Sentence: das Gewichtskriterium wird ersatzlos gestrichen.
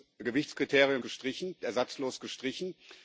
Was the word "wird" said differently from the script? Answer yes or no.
yes